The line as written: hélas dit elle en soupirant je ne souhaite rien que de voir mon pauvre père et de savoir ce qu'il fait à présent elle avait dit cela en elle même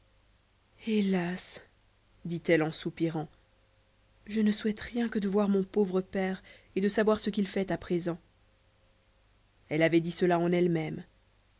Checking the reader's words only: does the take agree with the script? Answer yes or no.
yes